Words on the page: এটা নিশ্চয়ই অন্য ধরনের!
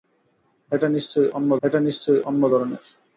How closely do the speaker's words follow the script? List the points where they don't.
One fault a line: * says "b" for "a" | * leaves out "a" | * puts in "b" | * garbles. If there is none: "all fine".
* puts in "এটা নিশ্চয়ই অন্য"